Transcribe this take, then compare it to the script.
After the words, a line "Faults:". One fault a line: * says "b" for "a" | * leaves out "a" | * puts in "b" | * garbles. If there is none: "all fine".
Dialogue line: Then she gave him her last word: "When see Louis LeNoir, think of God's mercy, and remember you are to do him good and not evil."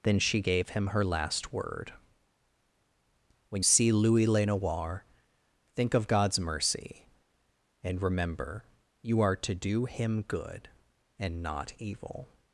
Then she gave him her last word: "When see Louis LeNoir, think of God's mercy, and remember you are to do him good and not evil."
Faults:
all fine